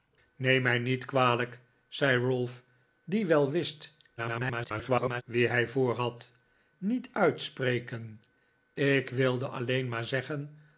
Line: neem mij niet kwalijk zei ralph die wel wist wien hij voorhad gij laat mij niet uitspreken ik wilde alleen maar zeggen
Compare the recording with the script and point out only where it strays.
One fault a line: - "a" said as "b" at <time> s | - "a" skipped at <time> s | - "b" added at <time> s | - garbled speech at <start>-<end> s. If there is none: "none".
- garbled speech at 4.2-5.2 s
- "gij laat mij" skipped at 6.3 s